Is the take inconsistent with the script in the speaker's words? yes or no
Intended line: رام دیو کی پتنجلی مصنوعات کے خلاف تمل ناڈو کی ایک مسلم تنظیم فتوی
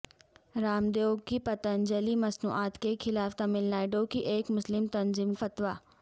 no